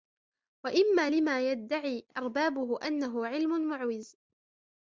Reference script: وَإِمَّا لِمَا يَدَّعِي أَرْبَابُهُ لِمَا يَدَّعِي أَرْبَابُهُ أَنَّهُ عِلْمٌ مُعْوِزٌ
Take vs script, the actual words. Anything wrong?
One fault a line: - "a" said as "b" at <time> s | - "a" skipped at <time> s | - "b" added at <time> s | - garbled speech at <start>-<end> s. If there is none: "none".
- "لِمَا يَدَّعِي أَرْبَابُهُ" skipped at 2.9 s